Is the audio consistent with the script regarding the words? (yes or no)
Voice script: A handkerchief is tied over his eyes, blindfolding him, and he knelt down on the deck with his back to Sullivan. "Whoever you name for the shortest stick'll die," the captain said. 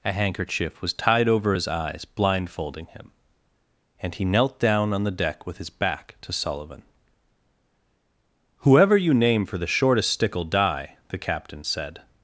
no